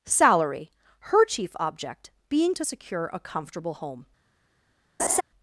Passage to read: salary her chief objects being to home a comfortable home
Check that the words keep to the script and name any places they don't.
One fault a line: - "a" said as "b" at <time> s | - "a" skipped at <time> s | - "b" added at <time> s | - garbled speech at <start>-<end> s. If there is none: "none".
- "objects" said as "object" at 1.6 s
- "home" said as "secure" at 2.6 s